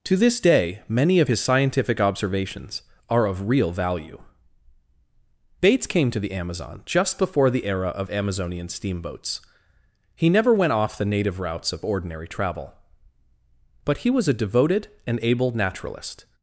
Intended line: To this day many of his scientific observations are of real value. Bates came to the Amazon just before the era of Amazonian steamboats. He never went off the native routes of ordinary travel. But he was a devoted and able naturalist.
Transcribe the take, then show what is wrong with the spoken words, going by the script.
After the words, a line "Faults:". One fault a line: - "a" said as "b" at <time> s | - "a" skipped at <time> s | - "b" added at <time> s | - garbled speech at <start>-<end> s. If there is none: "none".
To this day many of his scientific observations are of real value. Bates came to the Amazon just before the era of Amazonian steamboats. He never went off the native routes of ordinary travel. But he was a devoted and able naturalist.
Faults:
none